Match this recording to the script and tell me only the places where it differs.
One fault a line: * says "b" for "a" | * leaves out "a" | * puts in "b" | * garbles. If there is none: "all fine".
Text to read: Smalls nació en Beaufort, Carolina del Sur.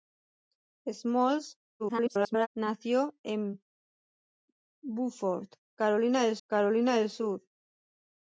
* garbles
* puts in "Carolina del"